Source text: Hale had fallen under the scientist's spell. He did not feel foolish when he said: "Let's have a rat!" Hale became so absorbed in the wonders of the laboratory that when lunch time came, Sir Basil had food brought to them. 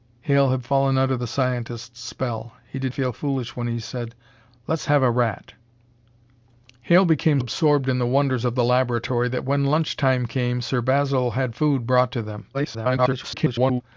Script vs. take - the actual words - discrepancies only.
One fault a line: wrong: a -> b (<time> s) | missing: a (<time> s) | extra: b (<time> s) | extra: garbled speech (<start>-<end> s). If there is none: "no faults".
missing: not (2.9 s)
missing: so (7.4 s)
extra: garbled speech (12.5-13.8 s)